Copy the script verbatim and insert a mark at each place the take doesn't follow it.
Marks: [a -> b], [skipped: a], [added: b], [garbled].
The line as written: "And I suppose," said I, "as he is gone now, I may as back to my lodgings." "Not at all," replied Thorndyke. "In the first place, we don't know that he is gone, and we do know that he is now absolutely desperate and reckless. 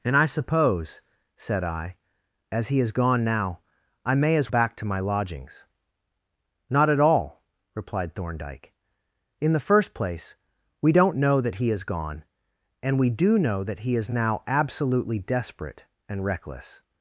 "And I suppose," said I, "as he is gone now, I may as back to my lodgings." "Not at all," replied Thorndyke. "In the first place, we don't know that he is gone, and we do know that he is now absolutely desperate and reckless.